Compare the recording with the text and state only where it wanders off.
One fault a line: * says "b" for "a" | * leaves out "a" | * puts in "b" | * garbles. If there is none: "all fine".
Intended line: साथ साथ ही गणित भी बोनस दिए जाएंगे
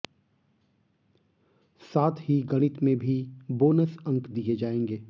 * leaves out "साथ"
* puts in "में"
* puts in "अंक"